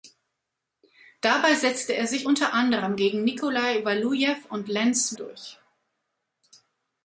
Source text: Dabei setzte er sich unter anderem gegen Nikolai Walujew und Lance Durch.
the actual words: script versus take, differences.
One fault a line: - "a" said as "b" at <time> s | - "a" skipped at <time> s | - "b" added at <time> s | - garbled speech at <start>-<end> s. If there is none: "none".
none